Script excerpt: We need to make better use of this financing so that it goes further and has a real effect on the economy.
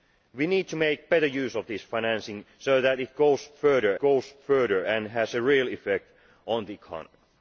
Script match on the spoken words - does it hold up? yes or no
no